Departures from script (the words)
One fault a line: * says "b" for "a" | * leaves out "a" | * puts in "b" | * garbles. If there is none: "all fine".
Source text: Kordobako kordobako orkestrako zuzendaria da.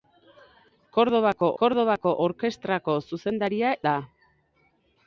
all fine